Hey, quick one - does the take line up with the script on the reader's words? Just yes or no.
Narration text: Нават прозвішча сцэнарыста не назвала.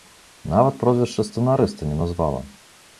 yes